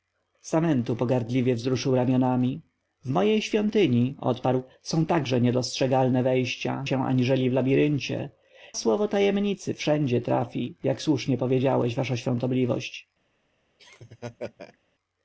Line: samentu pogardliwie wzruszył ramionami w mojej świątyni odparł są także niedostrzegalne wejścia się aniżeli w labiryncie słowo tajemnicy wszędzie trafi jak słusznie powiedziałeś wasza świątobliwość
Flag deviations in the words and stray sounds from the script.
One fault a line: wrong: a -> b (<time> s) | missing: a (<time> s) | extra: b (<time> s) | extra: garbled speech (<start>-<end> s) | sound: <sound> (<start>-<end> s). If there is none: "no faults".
sound: laugh (13.8-14.8 s)